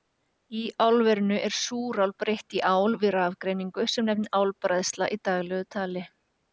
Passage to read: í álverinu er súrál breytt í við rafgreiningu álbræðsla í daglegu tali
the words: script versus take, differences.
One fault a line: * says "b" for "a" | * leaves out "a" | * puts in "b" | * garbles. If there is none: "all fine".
* puts in "ál"
* puts in "sem nefnist"